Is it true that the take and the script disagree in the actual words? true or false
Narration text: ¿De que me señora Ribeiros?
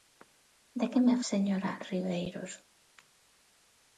false